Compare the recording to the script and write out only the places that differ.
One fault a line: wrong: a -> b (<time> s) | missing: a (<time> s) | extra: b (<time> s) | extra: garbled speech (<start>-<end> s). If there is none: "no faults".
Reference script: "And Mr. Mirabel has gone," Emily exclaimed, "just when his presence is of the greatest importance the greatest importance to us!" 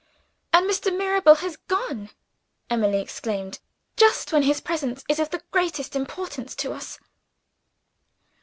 missing: the greatest importance (6.5 s)